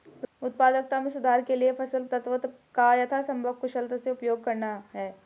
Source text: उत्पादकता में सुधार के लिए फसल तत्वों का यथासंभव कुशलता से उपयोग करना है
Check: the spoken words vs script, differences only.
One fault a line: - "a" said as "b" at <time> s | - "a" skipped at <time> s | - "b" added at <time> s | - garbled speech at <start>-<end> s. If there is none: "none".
none